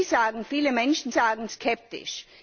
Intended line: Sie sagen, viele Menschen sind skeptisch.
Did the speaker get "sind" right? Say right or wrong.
wrong